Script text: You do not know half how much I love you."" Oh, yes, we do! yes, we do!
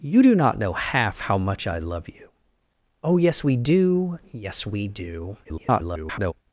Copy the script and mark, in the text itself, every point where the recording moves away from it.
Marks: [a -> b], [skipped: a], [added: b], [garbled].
You do not know half how much I love you."" Oh, yes, we do! yes, we do! [garbled]